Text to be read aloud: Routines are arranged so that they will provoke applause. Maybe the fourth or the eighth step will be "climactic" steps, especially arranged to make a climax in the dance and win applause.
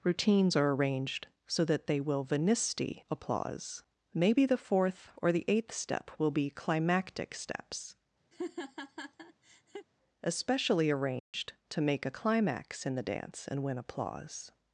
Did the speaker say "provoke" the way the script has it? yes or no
no